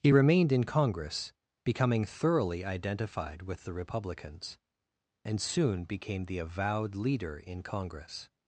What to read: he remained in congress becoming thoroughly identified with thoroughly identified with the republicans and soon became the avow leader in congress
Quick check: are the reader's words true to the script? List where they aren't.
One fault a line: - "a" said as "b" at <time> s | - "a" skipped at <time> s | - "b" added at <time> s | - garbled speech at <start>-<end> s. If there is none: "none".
- "thoroughly identified with" skipped at 3.6 s
- "avow" said as "avowed" at 6.4 s